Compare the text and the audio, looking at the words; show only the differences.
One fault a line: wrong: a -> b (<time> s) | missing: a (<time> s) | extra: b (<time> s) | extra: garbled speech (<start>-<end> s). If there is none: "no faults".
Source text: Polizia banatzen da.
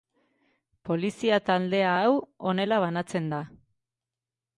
extra: taldea hau honela (1.5 s)